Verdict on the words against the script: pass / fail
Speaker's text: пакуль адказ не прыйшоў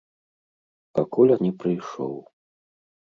fail